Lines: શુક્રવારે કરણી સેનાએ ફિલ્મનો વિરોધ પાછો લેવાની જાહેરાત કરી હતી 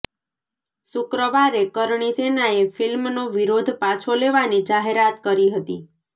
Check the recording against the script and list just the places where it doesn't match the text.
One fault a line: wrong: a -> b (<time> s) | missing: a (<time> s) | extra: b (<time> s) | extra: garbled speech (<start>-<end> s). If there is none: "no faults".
no faults